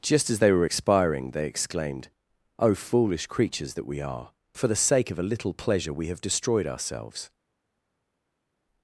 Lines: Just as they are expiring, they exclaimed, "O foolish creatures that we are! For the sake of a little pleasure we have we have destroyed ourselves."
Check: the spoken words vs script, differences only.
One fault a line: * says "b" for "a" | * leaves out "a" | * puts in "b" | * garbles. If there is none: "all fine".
* says "were" for "are"
* leaves out "we have"